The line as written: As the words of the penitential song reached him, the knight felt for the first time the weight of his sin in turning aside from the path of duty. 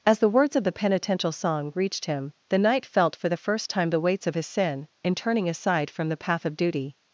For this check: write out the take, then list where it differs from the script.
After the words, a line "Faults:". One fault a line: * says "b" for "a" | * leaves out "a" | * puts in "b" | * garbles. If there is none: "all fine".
As the words of the penitential song reached him, the knight felt for the first time the weights of his sin in turning aside from the path of duty.
Faults:
* says "weights" for "weight"